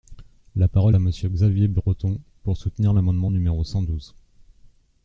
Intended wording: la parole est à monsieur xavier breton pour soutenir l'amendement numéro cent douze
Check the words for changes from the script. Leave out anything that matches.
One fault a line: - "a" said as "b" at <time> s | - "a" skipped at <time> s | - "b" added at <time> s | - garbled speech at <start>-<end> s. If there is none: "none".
- "est" skipped at 0.9 s